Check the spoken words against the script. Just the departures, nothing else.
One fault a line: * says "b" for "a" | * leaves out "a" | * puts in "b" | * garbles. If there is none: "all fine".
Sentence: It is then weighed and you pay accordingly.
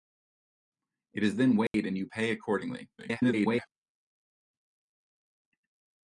* garbles